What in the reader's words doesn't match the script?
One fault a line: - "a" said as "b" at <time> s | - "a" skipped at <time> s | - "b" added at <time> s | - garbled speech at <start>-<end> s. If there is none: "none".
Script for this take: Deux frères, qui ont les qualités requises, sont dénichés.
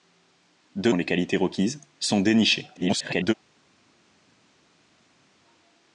- "frères qui" skipped at 0.9 s
- garbled speech at 2.8-3.3 s